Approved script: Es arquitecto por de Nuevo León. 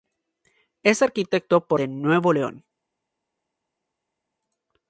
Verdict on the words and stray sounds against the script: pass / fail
pass